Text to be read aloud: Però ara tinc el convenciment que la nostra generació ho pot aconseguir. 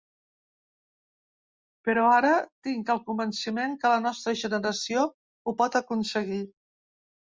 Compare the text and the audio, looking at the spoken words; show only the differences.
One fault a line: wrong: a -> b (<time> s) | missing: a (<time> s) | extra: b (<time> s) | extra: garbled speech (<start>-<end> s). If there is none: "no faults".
no faults